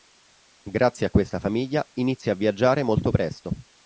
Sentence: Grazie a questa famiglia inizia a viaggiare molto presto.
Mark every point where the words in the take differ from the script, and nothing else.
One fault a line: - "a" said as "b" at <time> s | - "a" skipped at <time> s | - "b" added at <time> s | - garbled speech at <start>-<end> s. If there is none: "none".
none